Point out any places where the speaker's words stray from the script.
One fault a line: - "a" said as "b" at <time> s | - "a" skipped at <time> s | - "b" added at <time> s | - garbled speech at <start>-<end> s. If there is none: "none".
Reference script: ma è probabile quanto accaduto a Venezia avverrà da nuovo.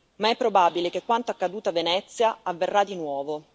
- "che" added at 0.9 s
- "da" said as "di" at 2.8 s